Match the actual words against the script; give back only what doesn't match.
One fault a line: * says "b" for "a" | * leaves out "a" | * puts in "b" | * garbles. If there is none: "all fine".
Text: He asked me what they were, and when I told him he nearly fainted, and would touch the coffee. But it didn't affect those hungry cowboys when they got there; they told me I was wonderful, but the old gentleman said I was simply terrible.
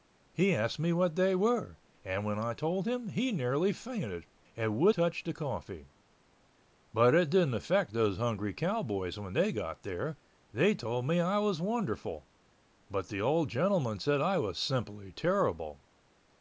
all fine